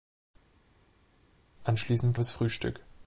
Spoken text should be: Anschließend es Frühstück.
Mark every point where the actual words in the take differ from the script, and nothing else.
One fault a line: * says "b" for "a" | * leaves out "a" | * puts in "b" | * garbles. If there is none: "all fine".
all fine